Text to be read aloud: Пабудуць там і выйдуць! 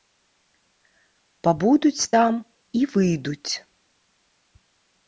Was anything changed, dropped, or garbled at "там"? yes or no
no